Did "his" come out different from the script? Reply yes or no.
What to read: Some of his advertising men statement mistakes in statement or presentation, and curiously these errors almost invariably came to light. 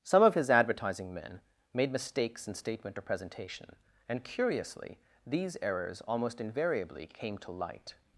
no